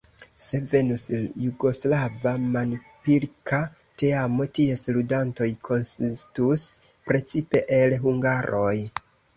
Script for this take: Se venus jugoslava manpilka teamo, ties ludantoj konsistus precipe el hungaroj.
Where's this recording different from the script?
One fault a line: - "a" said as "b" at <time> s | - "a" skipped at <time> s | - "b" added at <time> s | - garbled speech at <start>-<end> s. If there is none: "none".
none